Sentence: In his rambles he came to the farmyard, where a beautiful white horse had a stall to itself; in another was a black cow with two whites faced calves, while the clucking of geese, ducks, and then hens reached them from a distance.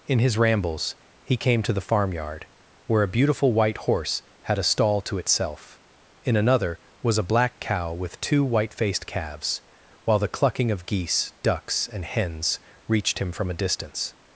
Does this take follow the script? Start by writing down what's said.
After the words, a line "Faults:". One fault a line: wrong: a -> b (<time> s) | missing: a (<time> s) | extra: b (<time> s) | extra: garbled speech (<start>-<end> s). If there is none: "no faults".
In his rambles he came to the farmyard, where a beautiful white horse had a stall to itself; in another was a black cow with two white faced calves, while the clucking of geese, ducks, and hens reached him from a distance.
Faults:
wrong: whites -> white (8.4 s)
missing: then (12.1 s)
wrong: them -> him (13.2 s)